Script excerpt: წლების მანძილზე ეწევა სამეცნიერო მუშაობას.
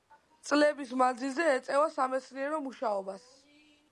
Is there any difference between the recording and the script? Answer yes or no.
no